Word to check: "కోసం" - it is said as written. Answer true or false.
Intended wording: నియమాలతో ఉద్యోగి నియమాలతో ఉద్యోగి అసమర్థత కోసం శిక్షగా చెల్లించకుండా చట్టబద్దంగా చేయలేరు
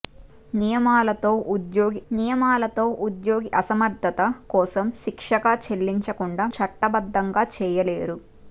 true